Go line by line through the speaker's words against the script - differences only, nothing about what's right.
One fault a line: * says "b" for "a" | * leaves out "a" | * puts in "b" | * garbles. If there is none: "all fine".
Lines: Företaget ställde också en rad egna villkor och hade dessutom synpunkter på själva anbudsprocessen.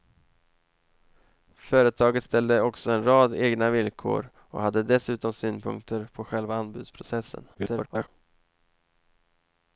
* garbles